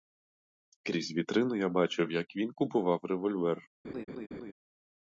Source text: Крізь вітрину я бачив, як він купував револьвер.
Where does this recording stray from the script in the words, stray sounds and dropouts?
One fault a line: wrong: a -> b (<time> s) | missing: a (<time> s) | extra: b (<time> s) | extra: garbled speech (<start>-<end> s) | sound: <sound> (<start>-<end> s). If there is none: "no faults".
sound: laugh (3.8-4.5 s)